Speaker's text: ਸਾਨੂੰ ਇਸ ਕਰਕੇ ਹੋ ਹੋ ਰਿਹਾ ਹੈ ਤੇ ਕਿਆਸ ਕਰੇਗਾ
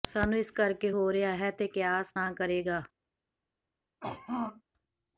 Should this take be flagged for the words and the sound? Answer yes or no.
yes